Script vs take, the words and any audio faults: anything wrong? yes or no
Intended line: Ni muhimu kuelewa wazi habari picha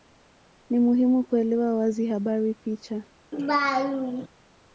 yes